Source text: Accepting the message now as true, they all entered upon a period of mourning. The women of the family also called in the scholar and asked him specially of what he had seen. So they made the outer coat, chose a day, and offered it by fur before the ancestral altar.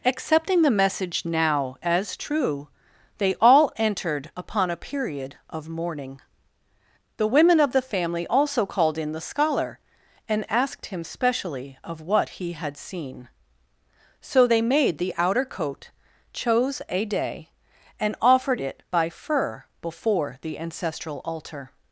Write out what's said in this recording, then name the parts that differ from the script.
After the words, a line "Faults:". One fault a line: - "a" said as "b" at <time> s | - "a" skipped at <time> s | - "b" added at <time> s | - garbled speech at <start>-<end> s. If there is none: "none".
Accepting the message now as true, they all entered upon a period of mourning. The women of the family also called in the scholar and asked him specially of what he had seen. So they made the outer coat, chose a day, and offered it by fur before the ancestral altar.
Faults:
none